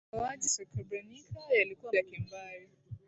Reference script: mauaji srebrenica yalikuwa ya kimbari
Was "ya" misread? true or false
false